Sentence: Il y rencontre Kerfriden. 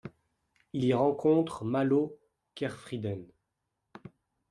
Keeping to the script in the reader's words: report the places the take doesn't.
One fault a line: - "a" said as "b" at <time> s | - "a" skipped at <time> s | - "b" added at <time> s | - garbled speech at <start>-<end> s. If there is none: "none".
- "Malo" added at 1.7 s